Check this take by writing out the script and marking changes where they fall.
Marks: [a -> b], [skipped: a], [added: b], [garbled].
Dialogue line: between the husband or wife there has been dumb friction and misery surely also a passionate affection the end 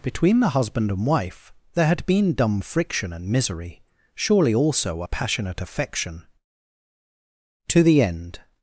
between the husband [or -> and] wife there [has -> had] been dumb friction and misery surely also a passionate affection [added: to] the end